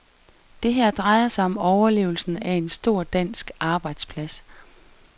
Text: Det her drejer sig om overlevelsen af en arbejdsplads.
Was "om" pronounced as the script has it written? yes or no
yes